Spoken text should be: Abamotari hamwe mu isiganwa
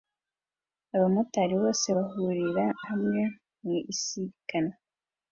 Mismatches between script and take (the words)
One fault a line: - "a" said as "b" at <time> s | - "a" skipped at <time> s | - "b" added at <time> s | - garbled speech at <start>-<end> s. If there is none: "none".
- "bose bahurira" added at 1.6 s